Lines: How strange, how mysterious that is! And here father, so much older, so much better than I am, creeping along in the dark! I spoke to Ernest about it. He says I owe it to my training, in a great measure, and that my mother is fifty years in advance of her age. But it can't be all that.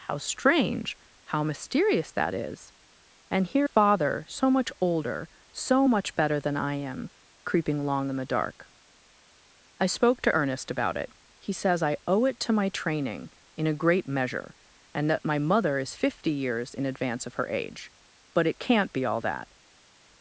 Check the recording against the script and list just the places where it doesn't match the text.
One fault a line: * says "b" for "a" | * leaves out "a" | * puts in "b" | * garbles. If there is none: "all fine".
all fine